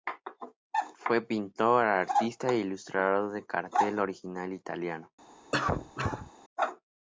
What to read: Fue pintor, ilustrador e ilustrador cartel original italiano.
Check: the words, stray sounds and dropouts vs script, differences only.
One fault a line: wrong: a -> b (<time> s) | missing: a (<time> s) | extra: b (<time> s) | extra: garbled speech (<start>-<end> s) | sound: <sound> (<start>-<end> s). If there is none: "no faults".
wrong: ilustrador -> artista (1.9 s)
extra: de (3.3 s)
sound: cough (5.5-6.3 s)